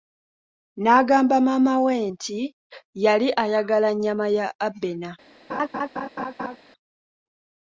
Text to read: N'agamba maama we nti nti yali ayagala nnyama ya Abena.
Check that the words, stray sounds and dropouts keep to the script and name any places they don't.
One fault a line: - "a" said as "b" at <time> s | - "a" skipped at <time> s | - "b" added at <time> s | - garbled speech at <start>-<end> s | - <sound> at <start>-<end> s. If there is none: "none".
- "nti" skipped at 2.4 s
- laugh at 5.5-6.6 s